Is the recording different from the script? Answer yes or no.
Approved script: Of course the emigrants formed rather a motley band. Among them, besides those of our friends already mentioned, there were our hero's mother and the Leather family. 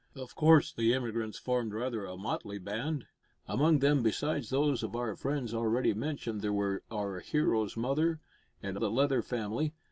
no